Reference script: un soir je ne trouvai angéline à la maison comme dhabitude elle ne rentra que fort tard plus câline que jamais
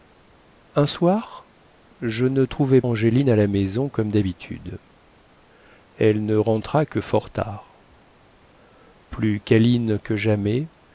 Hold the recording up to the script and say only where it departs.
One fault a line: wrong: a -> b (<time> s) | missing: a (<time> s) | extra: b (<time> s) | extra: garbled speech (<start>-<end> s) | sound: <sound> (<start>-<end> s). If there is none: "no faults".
no faults